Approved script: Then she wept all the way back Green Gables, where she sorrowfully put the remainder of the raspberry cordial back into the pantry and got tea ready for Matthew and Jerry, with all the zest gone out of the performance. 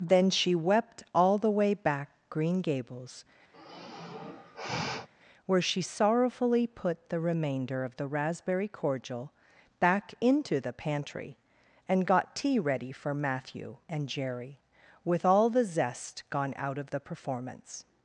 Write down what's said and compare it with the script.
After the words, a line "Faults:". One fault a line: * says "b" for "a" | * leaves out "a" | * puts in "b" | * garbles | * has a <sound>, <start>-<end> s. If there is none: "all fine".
Then she wept all the way back Green Gables, where she sorrowfully put the remainder of the raspberry cordial back into the pantry and got tea ready for Matthew and Jerry, with all the zest gone out of the performance.
Faults:
* has a sigh, 3.5-5.1 s